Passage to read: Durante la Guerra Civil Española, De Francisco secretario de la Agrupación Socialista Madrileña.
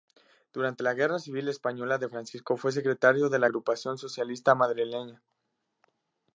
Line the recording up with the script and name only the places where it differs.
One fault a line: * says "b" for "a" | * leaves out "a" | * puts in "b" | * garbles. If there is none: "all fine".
* puts in "fue"